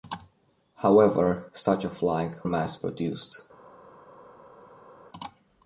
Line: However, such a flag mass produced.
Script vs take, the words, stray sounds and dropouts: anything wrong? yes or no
no